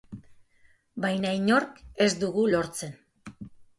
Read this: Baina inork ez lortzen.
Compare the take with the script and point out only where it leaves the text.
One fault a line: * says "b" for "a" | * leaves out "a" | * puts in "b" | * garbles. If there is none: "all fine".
* puts in "dugu"